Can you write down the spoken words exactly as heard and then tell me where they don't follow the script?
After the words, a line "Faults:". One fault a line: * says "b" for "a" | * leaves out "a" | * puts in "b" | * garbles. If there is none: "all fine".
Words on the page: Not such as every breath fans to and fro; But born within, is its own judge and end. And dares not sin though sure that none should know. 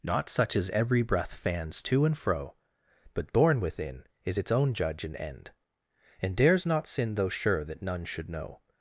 Not such as every breath fans to and fro; But born within, is its own judge and end. And dares not sin though sure that none should know.
Faults:
all fine